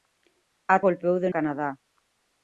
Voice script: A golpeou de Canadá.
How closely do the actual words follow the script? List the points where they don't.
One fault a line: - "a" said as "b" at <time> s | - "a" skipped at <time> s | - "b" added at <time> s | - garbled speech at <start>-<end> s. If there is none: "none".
none